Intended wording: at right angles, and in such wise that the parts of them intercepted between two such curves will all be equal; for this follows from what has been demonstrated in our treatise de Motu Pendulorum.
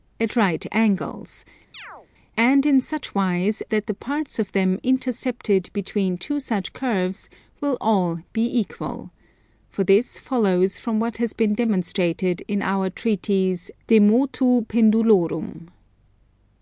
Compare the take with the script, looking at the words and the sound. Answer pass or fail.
fail